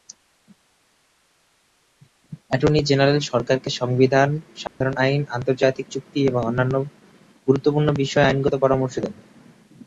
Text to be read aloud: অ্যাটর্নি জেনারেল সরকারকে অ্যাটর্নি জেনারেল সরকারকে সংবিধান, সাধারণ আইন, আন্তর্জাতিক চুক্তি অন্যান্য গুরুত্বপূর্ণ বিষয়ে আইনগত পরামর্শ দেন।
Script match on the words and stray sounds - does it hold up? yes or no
no